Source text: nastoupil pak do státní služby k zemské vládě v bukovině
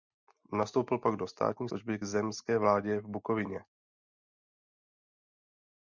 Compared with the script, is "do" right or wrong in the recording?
right